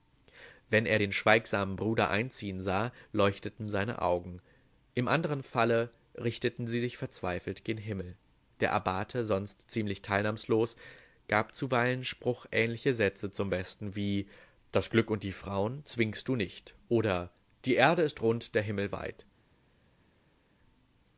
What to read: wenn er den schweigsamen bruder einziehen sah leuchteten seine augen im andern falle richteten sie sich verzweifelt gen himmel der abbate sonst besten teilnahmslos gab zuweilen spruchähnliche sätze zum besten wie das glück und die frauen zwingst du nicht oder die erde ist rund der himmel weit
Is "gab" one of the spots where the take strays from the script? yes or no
no